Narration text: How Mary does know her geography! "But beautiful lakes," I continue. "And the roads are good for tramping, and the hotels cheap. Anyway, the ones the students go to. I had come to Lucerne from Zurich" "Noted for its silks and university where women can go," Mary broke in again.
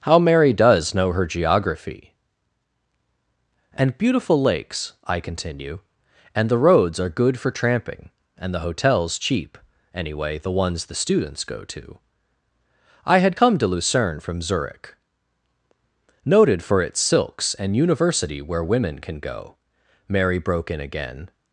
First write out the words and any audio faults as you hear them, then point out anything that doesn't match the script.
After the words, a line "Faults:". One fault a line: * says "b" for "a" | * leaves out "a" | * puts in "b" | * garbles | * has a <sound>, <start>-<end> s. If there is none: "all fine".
How Mary does know her geography! "And beautiful lakes," I continue. "And the roads are good for tramping, and the hotels cheap. Anyway, the ones the students go to. I had come to Lucerne from Zurich" "Noted for its silks and university where women can go," Mary broke in again.
Faults:
* says "And" for "But"